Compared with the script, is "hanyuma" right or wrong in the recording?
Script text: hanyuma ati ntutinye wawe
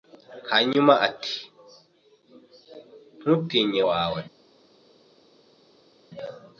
right